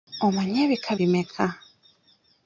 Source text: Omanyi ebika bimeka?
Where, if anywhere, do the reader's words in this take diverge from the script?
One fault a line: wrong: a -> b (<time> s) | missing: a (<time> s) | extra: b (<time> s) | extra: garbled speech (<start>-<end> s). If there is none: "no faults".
no faults